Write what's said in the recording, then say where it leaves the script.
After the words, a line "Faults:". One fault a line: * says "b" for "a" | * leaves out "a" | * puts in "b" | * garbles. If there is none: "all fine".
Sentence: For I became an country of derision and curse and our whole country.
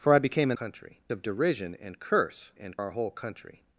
For I became an country of derision and curse and our whole country.
Faults:
all fine